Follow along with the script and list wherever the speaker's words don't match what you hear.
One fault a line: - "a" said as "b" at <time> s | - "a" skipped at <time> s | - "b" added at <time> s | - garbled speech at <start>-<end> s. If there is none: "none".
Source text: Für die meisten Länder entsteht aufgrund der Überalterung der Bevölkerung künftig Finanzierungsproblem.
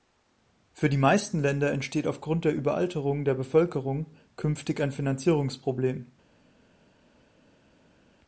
- "ein" added at 4.8 s